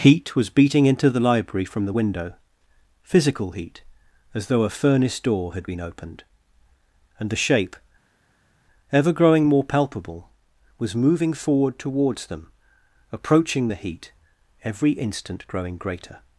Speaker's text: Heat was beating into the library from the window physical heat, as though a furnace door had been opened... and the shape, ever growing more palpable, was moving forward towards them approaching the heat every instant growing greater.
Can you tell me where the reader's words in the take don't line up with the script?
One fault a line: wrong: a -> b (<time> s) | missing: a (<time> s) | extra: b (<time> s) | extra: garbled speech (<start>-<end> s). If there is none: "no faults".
no faults